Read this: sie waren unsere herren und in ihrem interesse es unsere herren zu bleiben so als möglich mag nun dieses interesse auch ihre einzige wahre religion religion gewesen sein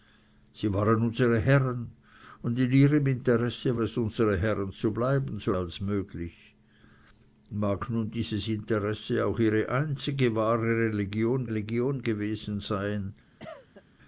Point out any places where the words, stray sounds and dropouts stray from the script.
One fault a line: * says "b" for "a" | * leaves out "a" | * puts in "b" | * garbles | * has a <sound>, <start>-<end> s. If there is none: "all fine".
* has a cough, 13.4-13.8 s